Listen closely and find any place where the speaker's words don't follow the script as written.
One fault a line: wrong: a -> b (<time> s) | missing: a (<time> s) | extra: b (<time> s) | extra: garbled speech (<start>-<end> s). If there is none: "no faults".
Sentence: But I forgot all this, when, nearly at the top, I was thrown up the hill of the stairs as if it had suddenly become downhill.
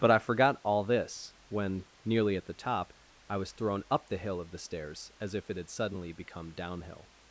no faults